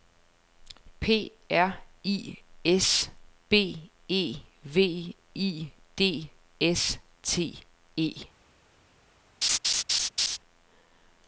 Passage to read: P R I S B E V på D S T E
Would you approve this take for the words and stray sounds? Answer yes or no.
no